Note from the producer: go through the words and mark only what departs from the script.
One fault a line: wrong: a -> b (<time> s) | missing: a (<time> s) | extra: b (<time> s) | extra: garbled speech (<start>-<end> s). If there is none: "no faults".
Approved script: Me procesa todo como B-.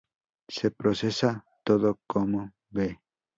wrong: Me -> Se (0.5 s)